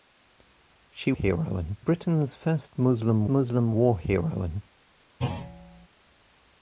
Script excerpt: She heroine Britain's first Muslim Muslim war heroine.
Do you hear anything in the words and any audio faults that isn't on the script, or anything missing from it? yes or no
yes